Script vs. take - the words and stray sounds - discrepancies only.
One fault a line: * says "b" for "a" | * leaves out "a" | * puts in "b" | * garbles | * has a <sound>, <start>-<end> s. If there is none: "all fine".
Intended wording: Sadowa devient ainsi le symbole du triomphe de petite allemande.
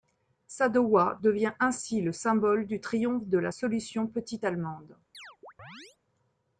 * puts in "la solution"
* has a chirp, 5.1-6.0 s